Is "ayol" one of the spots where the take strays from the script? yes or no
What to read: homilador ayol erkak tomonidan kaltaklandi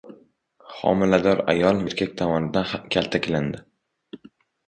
no